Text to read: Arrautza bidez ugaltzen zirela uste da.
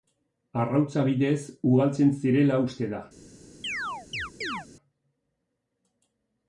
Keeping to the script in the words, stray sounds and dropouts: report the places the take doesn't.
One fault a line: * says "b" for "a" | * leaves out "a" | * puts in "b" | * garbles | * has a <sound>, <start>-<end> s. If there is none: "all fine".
* has a chirp, 3.6-4.7 s